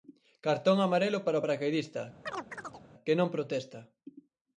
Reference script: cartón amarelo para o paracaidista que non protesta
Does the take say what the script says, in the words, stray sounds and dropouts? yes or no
no